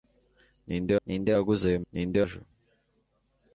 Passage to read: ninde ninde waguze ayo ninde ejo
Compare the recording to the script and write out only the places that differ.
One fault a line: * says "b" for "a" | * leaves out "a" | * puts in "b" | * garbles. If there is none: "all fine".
all fine